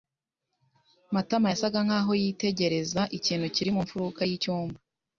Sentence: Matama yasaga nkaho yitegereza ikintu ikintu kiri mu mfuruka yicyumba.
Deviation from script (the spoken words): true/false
true